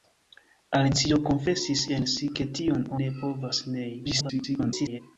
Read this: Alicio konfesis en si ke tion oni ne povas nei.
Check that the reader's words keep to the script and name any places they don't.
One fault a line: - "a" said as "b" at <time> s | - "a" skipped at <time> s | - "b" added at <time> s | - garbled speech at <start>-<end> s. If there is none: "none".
- "oni" skipped at 2.9 s
- garbled speech at 4.0-5.0 s